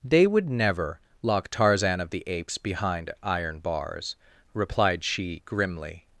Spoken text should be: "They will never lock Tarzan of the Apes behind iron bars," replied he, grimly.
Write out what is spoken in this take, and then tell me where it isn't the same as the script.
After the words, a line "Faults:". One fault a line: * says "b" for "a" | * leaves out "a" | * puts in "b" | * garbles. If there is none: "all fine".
"They would never lock Tarzan of the Apes behind iron bars," replied she, grimly.
Faults:
* says "would" for "will"
* says "she" for "he"